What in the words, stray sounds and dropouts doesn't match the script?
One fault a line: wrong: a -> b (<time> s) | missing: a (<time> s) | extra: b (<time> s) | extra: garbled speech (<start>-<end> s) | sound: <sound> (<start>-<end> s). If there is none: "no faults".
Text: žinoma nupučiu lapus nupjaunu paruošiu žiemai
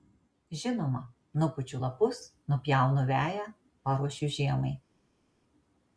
extra: veją (3.1 s)